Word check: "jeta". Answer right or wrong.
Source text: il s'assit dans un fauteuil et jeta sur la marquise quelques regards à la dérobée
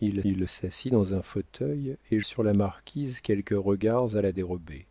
wrong